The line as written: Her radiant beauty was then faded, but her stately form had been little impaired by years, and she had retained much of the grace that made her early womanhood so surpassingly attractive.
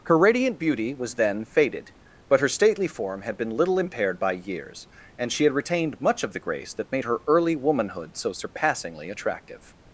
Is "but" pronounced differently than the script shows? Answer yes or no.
no